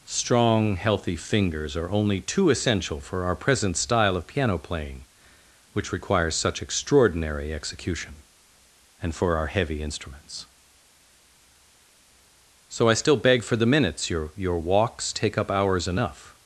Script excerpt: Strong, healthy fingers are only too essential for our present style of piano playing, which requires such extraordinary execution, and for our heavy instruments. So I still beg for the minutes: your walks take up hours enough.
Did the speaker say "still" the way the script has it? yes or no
yes